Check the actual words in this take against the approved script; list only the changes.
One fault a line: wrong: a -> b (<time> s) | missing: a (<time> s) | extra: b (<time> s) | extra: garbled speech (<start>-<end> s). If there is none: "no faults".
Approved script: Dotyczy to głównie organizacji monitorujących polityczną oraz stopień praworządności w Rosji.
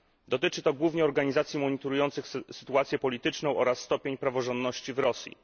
extra: sytuację (2.5 s)